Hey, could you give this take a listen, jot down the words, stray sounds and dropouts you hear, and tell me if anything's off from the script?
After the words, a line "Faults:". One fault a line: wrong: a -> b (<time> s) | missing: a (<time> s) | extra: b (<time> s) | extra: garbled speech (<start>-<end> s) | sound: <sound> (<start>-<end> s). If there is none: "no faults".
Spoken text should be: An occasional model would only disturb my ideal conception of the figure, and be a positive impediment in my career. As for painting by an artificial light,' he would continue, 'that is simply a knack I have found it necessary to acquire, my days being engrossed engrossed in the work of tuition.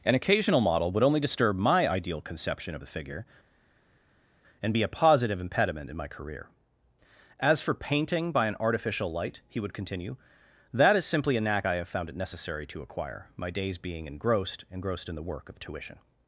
An occasional model would only disturb my ideal conception of the figure, and be a positive impediment in my career. As for painting by an artificial light,' he would continue, 'that is simply a knack I have found it necessary to acquire, my days being engrossed engrossed in the work of tuition.
Faults:
no faults